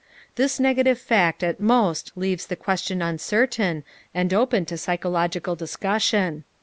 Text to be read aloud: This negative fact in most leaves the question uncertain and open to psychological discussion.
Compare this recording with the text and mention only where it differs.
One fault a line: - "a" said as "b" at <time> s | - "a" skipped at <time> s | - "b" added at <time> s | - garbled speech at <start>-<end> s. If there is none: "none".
- "in" said as "at" at 1.4 s